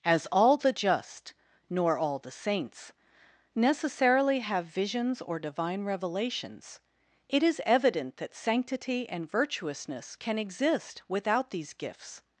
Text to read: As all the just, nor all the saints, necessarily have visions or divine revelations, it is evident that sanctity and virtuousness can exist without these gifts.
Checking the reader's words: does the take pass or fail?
pass